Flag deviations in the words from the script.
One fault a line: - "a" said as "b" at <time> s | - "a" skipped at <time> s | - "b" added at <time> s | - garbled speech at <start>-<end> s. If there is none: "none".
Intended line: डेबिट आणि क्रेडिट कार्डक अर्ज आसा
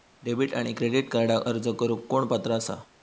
- "करुक कोण पात्र" added at 1.8 s